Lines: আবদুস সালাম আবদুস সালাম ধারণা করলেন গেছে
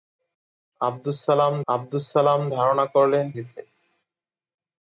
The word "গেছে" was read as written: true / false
true